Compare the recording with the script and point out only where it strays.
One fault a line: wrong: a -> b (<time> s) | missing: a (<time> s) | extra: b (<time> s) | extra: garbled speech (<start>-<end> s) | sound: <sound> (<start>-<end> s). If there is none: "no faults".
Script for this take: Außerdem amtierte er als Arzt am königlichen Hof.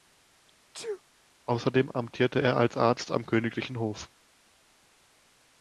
sound: sneeze (0.7-1.0 s)